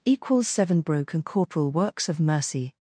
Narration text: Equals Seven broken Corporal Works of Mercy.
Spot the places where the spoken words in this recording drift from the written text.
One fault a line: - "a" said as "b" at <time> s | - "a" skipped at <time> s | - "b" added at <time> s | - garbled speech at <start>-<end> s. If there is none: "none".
none